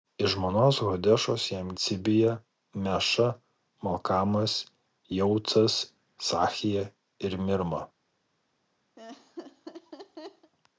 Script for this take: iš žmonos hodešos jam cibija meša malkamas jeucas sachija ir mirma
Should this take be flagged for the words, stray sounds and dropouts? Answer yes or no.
yes